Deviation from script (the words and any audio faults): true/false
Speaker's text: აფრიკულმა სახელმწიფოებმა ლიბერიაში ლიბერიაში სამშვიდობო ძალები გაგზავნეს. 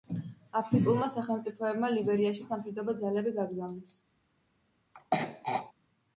true